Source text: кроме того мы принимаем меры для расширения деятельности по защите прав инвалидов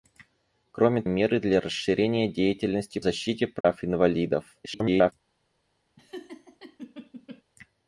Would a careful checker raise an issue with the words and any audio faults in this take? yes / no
yes